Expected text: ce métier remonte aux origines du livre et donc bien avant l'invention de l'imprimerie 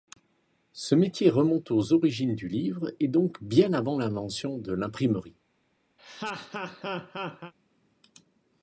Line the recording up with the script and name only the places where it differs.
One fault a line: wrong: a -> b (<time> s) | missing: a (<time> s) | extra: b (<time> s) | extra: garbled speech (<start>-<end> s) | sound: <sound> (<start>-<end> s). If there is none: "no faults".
sound: laugh (6.0-7.5 s)